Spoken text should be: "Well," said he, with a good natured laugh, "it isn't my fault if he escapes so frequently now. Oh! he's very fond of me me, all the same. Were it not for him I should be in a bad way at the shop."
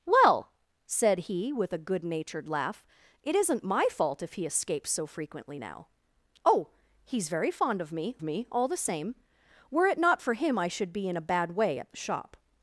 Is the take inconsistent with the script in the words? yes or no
no